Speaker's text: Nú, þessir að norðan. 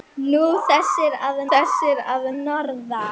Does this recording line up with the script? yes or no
no